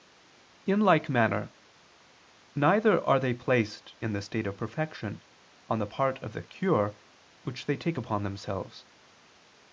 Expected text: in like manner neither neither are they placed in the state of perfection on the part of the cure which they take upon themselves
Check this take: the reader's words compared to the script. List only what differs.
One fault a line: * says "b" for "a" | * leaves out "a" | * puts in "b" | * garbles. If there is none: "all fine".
* leaves out "neither"